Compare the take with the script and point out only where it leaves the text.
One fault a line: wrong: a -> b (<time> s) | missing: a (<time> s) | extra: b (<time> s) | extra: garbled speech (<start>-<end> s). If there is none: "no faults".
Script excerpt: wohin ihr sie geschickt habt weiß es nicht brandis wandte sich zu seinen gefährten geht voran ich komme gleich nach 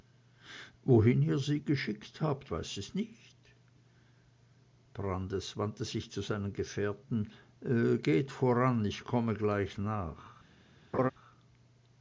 no faults